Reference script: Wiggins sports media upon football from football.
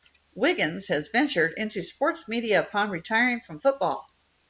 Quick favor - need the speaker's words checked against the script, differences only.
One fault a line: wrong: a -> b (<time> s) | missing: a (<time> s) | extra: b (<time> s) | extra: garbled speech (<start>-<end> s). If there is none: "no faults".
extra: has ventured into (0.9 s)
wrong: football -> retiring (2.9 s)